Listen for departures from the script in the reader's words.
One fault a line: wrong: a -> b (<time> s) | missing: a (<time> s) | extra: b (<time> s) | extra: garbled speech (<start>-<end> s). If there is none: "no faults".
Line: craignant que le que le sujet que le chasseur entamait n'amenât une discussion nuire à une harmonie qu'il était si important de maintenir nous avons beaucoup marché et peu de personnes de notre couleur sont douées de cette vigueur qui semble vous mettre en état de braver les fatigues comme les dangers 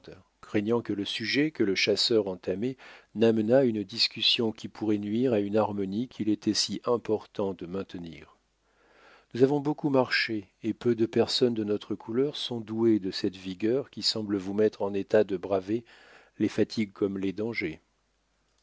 missing: que le (1.1 s)
extra: qui pourrait (4.5 s)